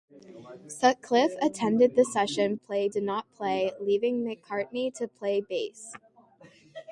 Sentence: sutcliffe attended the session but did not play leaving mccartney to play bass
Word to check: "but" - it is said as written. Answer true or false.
false